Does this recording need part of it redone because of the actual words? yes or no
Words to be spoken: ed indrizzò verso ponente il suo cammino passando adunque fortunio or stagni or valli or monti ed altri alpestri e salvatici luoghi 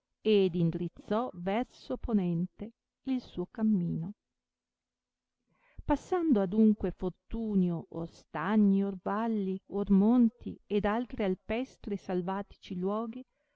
no